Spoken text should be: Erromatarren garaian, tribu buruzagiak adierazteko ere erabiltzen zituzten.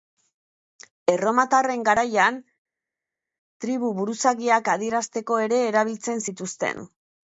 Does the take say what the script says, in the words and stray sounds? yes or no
yes